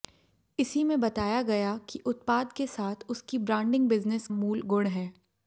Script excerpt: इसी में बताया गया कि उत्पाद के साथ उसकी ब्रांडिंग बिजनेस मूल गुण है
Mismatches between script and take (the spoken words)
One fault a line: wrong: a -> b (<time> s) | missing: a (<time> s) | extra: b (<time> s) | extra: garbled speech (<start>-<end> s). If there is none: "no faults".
no faults